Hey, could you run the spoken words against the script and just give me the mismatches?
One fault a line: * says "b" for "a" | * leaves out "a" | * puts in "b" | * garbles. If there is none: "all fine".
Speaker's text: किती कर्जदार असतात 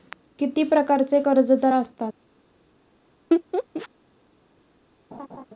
* puts in "प्रकारचे"